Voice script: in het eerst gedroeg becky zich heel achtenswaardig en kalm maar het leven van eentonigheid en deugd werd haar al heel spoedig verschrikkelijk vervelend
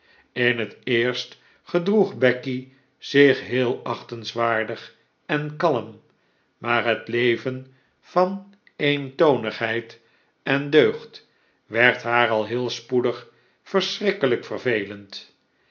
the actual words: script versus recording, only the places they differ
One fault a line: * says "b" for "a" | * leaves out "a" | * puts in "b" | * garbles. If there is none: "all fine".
all fine